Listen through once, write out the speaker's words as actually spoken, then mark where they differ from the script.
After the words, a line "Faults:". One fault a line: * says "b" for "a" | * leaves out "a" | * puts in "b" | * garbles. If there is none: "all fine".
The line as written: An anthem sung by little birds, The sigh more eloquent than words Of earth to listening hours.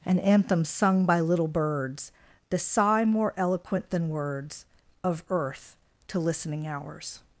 An anthem sung by little birds, The sigh more eloquent than words Of earth to listening hours.
Faults:
all fine